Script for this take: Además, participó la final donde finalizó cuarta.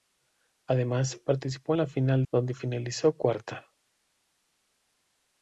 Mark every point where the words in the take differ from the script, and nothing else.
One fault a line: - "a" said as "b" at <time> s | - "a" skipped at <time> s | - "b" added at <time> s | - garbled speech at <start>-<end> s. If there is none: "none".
none